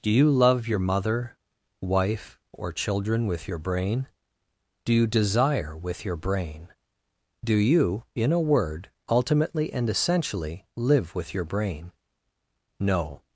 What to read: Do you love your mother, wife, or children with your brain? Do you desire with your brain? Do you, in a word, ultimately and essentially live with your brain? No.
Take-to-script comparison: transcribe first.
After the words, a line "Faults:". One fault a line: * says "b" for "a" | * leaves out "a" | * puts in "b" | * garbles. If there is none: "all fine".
Do you love your mother, wife, or children with your brain? Do you desire with your brain? Do you, in a word, ultimately and essentially live with your brain? No.
Faults:
all fine